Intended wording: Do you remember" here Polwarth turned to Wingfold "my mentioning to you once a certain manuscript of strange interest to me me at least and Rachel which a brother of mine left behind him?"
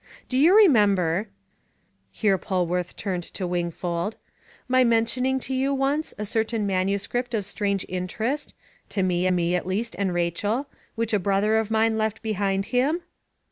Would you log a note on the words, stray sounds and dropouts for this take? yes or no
no